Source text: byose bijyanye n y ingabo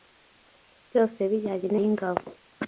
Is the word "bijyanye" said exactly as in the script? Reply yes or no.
yes